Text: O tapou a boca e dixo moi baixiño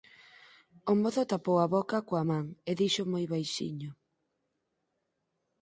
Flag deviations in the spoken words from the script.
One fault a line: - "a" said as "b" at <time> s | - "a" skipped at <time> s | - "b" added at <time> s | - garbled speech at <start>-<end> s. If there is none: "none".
- "mozo" added at 1.0 s
- "coa man" added at 2.1 s